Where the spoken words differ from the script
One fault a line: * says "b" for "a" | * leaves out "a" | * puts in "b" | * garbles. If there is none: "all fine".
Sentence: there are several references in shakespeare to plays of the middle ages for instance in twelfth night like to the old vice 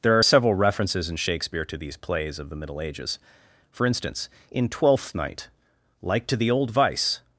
* puts in "these"